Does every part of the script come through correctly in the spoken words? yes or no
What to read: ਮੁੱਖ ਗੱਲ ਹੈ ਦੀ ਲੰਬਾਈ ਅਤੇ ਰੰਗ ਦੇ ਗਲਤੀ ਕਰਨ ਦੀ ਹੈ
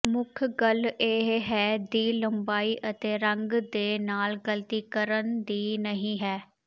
no